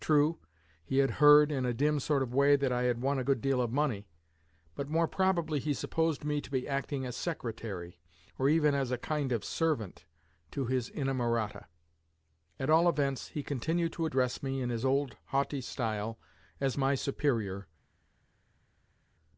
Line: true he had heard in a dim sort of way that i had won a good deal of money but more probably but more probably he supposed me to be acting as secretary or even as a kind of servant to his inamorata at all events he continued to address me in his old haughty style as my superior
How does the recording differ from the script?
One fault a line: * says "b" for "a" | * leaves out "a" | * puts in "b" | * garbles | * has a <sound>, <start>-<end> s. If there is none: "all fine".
* leaves out "but more probably"